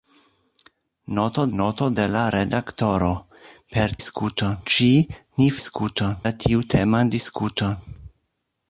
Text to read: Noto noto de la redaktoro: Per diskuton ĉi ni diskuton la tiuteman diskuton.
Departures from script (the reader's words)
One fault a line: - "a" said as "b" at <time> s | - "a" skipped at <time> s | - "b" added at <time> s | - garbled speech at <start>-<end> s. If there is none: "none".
none